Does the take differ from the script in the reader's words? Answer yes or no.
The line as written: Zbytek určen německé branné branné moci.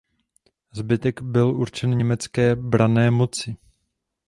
yes